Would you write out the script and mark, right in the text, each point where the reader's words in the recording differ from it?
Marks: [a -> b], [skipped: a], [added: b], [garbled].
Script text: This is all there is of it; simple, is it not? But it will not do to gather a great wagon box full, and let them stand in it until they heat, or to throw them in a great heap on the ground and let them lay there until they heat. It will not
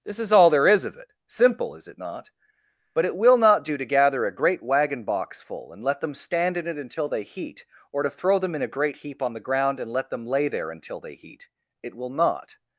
This is all there is of it; simple, is it not? But it will not do to gather a great wagon box full, and let them stand in it until they heat, or to throw them in a great heap on the ground and let them lay there until they heat. It will not